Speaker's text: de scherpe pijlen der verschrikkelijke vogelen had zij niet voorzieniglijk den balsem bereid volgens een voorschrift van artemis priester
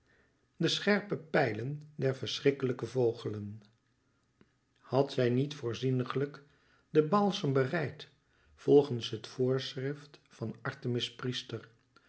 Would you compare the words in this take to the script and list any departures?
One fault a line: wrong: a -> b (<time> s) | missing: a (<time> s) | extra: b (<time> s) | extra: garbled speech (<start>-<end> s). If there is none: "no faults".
wrong: een -> het (9.1 s)